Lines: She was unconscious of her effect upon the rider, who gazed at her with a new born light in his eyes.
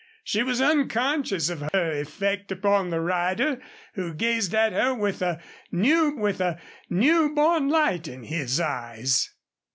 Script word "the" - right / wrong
right